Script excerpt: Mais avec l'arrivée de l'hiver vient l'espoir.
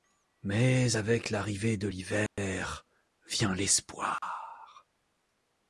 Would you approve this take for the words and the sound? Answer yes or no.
no